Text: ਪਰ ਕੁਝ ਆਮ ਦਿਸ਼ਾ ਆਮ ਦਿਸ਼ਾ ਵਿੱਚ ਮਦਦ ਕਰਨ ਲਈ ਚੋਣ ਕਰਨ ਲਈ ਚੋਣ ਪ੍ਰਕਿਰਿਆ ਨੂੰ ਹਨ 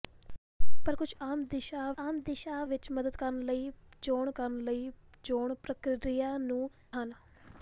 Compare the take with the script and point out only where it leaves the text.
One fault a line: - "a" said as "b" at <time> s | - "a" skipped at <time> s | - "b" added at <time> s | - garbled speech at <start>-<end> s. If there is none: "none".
none